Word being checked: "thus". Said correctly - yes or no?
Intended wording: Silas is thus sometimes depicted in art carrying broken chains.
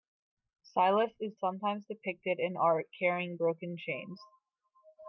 no